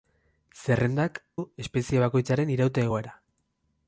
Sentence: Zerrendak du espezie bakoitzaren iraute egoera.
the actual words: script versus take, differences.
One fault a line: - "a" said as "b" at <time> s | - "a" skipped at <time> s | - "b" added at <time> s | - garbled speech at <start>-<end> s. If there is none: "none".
none